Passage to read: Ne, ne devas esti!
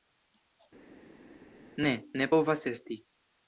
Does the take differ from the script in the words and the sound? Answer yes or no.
yes